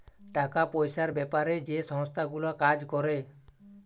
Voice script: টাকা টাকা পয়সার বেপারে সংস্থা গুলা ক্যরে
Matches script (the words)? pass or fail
fail